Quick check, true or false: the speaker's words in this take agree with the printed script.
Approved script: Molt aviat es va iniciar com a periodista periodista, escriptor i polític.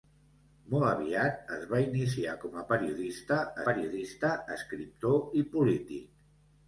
true